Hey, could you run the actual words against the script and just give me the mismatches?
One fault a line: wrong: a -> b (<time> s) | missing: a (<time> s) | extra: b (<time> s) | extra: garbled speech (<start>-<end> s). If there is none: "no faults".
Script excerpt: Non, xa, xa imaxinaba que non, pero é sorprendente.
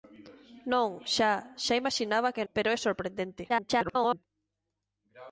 missing: non (2.5 s)
extra: garbled speech (3.5-4.2 s)